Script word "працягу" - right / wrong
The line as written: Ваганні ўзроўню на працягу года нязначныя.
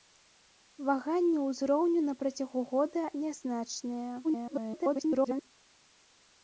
right